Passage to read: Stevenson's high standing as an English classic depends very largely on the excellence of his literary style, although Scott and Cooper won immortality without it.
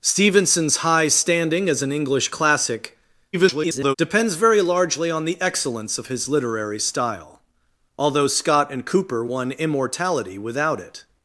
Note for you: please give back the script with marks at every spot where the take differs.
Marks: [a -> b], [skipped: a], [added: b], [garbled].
Stevenson's high standing as an English classic [garbled] depends very largely on the excellence of his literary style, although Scott and Cooper won immortality without it.